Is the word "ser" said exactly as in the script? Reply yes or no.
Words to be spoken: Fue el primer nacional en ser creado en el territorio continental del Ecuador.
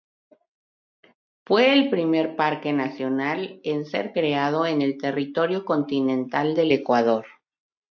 yes